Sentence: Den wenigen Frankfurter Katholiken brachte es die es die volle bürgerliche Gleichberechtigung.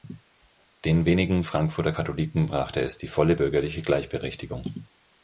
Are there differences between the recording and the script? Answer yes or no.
yes